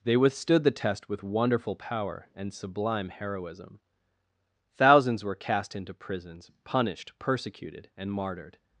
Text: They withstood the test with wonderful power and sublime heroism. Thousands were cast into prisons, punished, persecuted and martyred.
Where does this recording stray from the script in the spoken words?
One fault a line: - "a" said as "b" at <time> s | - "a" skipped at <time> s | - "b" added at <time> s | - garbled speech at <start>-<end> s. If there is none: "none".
none